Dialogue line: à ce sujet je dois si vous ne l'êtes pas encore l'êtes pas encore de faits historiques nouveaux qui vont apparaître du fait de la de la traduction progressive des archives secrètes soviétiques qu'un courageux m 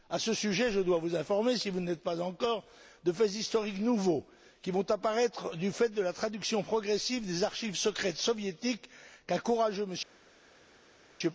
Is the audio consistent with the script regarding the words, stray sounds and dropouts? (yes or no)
no